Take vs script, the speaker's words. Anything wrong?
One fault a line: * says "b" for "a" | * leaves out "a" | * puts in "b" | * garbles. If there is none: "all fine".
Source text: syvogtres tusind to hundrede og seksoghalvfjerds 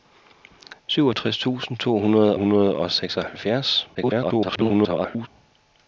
* puts in "hundrede"
* garbles